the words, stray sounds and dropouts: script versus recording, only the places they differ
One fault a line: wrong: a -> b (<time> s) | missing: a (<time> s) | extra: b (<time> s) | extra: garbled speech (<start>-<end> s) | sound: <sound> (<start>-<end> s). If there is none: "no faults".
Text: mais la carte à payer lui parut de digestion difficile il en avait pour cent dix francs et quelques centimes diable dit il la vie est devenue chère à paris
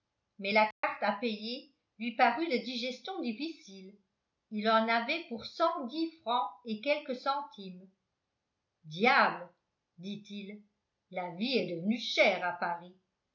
sound: dropout (0.7-0.8 s)